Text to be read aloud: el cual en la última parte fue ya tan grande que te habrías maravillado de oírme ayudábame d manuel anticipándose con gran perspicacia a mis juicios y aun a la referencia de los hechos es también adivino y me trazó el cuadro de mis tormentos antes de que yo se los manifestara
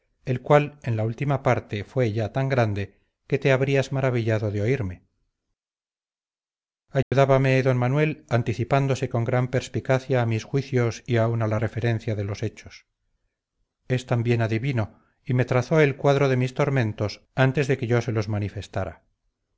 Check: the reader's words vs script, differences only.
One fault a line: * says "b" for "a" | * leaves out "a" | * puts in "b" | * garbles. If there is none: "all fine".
all fine